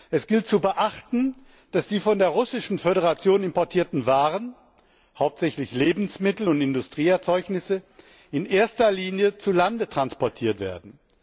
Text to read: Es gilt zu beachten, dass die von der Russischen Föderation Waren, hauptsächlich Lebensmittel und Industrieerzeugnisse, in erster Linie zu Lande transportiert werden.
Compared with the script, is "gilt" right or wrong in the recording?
right